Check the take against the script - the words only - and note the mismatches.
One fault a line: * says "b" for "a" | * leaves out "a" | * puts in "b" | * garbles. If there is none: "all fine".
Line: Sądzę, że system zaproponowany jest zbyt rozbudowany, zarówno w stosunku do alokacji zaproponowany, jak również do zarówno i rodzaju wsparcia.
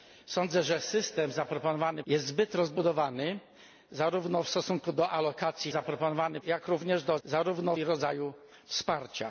all fine